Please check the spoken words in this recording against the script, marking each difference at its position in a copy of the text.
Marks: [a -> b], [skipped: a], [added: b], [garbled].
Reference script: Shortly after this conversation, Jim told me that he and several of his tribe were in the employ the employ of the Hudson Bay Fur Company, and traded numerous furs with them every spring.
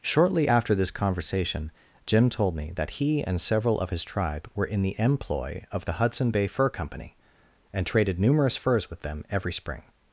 Shortly after this conversation, Jim told me that he and several of his tribe were in the employ [skipped: the employ] of the Hudson Bay Fur Company, and traded numerous furs with them every spring.